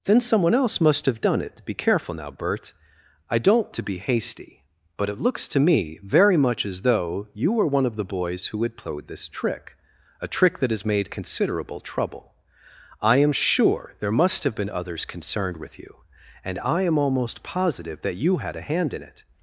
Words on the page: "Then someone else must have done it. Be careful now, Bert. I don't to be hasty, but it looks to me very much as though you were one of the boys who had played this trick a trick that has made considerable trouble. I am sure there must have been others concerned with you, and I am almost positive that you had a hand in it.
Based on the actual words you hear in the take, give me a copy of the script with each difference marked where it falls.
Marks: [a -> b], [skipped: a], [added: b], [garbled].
"Then someone else must have done it. Be careful now, Bert. I don't to be hasty, but it looks to me very much as though you were one of the boys who had played this trick a trick that has made considerable trouble. I am sure there must have been others concerned with you, and I am almost positive that you had a hand in it.